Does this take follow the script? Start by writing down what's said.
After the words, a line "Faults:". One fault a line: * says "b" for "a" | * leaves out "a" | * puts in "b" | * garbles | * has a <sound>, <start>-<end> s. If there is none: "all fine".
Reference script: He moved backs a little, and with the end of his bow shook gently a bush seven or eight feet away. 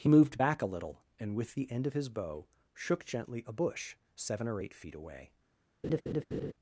He moved back a little, and with the end of his bow shook gently a bush seven or eight feet away.
Faults:
* says "back" for "backs"
* has a laugh, 5.8-6.5 s